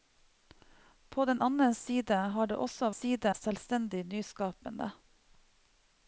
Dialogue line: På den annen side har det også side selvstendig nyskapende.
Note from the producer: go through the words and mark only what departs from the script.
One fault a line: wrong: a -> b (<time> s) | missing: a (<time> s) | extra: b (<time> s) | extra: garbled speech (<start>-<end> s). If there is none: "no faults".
no faults